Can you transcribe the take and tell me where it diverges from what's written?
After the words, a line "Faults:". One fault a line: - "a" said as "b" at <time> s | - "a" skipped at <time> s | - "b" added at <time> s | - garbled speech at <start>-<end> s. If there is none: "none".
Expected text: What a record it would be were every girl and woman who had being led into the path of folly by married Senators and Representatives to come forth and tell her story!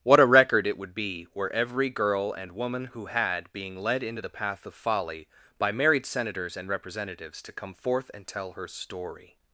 What a record it would be were every girl and woman who had being led into the path of folly by married Senators and Representatives to come forth and tell her story!
Faults:
none